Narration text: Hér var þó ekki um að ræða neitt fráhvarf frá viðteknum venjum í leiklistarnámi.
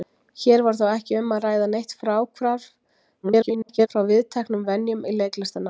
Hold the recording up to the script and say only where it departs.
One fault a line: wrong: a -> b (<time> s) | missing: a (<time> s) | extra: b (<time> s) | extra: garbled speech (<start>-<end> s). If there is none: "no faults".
extra: garbled speech (3.2-3.9 s)